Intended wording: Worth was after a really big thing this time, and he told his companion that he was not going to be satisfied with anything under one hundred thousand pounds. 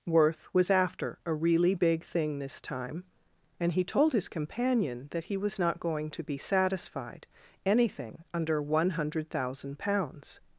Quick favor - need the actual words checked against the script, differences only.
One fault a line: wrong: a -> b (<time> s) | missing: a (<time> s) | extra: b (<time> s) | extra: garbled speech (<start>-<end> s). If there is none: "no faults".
missing: with (7.3 s)